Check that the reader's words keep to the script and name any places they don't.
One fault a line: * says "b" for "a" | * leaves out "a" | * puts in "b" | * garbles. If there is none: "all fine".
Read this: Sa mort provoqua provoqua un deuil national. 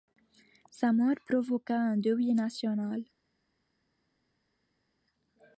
* leaves out "provoqua"